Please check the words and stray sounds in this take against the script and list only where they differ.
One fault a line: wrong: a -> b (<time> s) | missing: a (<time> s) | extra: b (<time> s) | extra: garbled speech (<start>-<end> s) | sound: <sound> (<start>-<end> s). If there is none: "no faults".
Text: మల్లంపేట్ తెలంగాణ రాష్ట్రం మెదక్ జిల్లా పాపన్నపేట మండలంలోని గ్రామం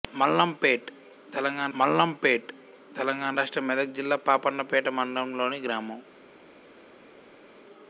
extra: మల్లంపేట్ తెలంగాణ (1.8 s)